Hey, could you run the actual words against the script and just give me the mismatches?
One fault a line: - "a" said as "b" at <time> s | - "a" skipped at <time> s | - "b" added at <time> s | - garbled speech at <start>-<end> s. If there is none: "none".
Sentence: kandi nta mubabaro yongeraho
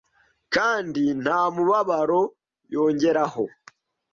none